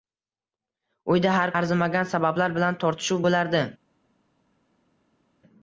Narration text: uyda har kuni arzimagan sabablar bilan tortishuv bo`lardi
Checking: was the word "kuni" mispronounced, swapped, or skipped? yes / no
yes